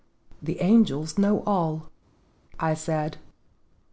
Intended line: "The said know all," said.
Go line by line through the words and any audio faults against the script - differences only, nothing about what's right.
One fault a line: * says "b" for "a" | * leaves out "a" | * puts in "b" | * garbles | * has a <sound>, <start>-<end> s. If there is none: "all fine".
* says "angels" for "said"
* puts in "I"